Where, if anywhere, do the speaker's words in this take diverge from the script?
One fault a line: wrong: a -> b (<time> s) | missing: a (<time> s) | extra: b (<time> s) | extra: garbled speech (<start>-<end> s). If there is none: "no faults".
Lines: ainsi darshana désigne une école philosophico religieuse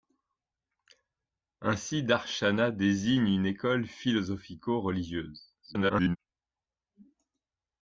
extra: garbled speech (5.6-6.2 s)